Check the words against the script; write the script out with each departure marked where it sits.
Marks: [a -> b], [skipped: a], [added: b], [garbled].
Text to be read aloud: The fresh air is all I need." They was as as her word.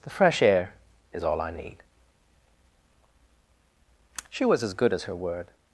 The fresh air is all I need." [They -> She] was as [added: good] as her word.